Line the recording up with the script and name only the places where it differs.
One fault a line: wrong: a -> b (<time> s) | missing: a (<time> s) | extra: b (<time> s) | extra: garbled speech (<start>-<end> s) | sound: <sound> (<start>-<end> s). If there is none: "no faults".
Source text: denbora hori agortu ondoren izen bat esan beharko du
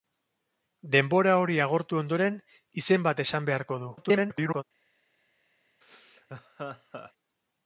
extra: garbled speech (4.0-4.6 s)
sound: laugh (5.8-7.1 s)